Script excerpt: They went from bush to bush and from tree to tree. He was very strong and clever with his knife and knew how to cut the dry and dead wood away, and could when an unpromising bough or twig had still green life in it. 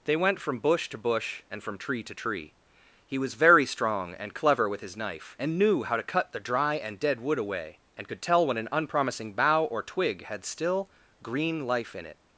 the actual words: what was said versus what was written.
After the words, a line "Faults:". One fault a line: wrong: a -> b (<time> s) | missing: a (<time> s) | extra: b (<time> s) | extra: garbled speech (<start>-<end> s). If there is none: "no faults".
They went from bush to bush and from tree to tree. He was very strong and clever with his knife and knew how to cut the dry and dead wood away, and could tell when an unpromising bough or twig had still green life in it.
Faults:
extra: tell (8.2 s)